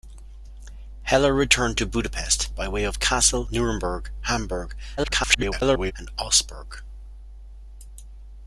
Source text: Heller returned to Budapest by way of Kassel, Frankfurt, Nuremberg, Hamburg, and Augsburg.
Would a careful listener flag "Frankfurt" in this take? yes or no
yes